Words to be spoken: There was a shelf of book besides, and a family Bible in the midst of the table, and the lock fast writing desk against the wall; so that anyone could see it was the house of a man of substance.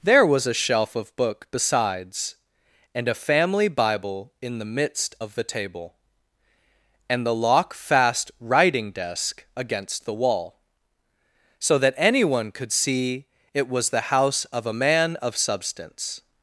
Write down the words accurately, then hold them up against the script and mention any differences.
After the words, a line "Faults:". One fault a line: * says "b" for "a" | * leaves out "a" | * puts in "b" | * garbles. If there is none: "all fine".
There was a shelf of book besides, and a family Bible in the midst of the table, and the lock fast writing desk against the wall; so that anyone could see it was the house of a man of substance.
Faults:
all fine